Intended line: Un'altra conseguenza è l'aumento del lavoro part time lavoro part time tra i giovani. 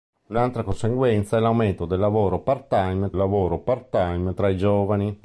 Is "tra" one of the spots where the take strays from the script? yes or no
no